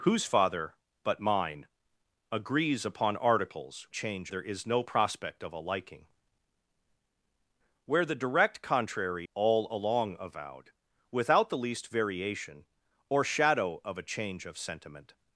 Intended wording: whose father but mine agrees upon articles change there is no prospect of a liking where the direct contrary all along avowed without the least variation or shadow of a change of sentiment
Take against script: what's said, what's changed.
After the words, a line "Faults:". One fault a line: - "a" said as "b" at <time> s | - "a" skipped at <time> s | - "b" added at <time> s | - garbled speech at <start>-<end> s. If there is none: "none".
whose father but mine agrees upon articles change there is no prospect of a liking where the direct contrary all along avowed without the least variation or shadow of a change of sentiment
Faults:
none